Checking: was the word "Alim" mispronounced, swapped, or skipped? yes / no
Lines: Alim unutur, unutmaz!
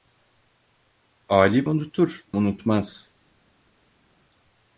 no